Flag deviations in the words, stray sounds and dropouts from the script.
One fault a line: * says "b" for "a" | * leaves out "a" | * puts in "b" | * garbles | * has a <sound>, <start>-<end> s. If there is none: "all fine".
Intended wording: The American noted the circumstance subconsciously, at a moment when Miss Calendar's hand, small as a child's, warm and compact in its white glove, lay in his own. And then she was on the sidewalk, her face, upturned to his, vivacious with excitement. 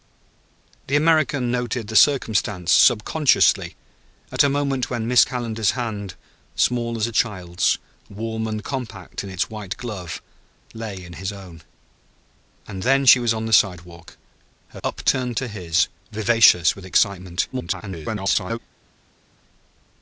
* leaves out "face"
* garbles